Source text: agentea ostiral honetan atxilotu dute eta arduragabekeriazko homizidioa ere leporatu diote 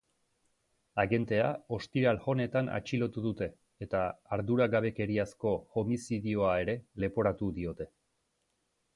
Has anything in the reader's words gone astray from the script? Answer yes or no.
no